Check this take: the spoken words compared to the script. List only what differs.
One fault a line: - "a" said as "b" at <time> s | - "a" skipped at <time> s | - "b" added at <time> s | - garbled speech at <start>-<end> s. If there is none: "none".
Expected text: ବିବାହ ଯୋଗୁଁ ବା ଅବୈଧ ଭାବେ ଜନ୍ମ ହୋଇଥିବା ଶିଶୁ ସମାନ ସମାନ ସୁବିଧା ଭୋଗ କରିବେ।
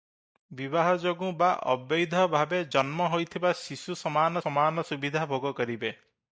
none